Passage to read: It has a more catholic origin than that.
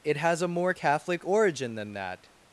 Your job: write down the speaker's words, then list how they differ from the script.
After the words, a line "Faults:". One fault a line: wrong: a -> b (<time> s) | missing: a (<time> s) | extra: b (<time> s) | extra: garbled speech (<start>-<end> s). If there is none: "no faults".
It has a more catholic origin than that.
Faults:
no faults